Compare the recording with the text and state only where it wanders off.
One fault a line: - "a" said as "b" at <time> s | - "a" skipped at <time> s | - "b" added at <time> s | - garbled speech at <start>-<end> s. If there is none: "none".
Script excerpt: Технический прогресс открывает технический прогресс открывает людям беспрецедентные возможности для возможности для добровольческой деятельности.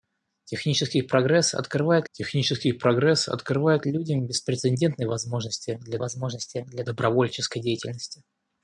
none